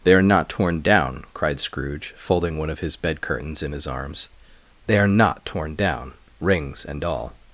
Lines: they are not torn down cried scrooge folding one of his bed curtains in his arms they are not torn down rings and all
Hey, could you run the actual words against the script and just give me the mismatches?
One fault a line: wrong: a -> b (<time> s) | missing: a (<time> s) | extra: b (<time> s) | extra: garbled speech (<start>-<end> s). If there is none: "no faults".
no faults